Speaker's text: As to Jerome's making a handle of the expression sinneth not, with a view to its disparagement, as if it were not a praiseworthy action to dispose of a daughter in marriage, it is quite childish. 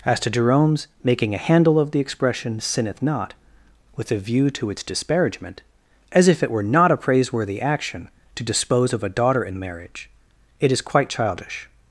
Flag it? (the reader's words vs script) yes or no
no